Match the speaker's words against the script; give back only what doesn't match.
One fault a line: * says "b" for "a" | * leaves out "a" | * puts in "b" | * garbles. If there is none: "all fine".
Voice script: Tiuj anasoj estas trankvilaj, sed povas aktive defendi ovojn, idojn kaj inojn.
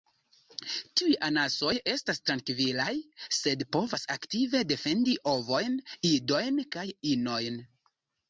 all fine